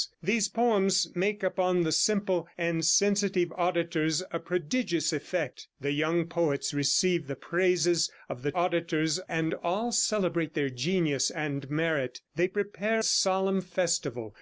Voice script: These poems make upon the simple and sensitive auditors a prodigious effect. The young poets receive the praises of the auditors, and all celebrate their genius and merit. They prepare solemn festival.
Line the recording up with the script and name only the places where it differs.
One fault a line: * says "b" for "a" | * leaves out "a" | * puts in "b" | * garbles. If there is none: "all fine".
all fine